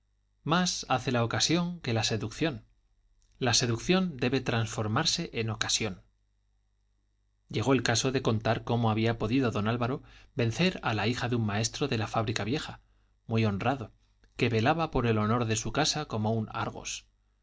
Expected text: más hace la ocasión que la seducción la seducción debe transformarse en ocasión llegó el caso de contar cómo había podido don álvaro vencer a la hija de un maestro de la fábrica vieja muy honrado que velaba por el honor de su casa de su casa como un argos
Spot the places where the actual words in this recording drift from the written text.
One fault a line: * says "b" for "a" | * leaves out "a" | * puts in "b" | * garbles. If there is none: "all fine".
* leaves out "de su casa"